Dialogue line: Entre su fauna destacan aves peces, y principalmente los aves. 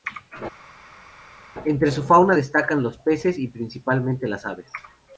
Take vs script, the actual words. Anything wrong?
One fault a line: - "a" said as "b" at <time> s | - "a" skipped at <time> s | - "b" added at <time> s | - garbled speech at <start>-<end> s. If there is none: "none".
- "aves" said as "los" at 2.8 s
- "los" said as "las" at 4.3 s